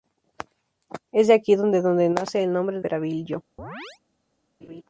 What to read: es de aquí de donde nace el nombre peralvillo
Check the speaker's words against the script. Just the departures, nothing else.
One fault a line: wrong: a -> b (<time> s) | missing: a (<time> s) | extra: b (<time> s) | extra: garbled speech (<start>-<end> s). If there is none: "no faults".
no faults